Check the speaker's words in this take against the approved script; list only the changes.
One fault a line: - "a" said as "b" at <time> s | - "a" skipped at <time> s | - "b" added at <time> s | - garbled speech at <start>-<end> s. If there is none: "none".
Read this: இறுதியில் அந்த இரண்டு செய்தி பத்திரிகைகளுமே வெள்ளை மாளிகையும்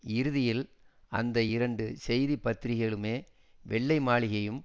none